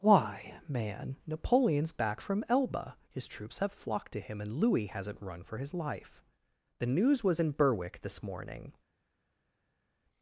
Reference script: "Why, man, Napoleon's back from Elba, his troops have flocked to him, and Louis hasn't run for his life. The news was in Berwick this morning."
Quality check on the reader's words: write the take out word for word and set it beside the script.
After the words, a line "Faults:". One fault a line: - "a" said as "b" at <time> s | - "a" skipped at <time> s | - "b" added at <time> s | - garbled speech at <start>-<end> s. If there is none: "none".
"Why, man, Napoleon's back from Elba, his troops have flocked to him, and Louis hasn't run for his life. The news was in Berwick this morning."
Faults:
none